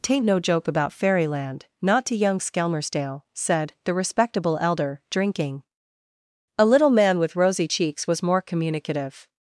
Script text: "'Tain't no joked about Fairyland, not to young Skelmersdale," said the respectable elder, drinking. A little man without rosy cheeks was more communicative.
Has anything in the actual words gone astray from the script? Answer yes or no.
yes